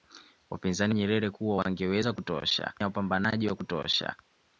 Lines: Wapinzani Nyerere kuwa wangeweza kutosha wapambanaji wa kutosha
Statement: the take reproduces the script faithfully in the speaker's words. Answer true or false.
true